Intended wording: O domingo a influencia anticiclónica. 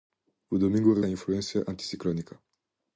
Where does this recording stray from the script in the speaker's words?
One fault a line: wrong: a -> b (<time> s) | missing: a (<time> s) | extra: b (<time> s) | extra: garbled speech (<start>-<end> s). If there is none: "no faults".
no faults